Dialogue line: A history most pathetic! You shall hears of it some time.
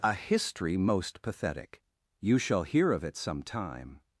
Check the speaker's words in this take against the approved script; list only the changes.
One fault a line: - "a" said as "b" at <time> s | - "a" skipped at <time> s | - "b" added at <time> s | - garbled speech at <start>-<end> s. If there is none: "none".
- "hears" said as "hear" at 2.6 s